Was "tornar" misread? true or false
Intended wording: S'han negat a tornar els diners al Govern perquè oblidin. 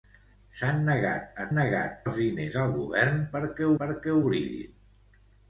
true